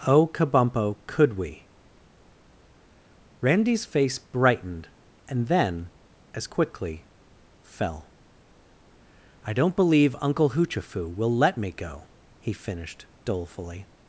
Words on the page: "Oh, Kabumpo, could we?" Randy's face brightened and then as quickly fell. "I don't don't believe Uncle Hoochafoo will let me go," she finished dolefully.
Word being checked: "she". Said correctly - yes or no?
no